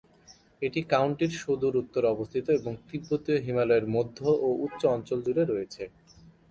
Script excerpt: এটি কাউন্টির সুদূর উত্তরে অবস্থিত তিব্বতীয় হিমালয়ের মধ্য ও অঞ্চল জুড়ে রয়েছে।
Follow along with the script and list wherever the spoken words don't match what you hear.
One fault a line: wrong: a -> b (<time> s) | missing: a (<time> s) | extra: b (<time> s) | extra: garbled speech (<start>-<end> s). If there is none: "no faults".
extra: এবং (2.6 s)
extra: উচ্চ (4.7 s)